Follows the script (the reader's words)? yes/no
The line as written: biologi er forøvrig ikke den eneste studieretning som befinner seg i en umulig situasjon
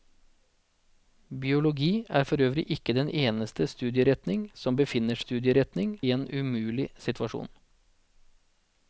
no